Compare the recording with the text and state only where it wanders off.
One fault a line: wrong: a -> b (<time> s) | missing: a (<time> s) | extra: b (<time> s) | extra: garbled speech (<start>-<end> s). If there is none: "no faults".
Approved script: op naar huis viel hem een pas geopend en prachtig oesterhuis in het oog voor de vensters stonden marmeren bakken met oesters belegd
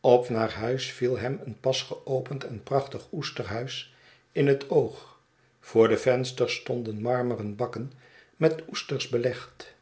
no faults